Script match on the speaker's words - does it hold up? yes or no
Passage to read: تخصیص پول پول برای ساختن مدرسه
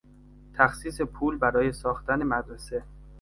no